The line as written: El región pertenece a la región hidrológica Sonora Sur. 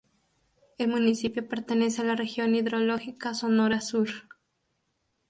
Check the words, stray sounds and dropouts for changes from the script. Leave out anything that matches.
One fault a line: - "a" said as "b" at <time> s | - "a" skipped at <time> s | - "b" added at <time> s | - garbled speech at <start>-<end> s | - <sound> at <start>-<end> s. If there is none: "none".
- "región" said as "municipio" at 0.9 s